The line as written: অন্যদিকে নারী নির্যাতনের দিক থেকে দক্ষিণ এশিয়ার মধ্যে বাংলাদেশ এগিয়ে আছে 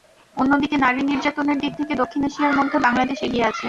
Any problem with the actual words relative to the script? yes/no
no